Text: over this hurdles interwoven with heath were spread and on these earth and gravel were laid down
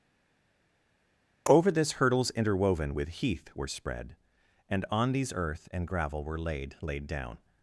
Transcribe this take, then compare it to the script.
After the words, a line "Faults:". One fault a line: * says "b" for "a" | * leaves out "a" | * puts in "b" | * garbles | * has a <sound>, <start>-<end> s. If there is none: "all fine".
over this hurdles interwoven with heath were spread and on these earth and gravel were laid laid down
Faults:
* puts in "laid"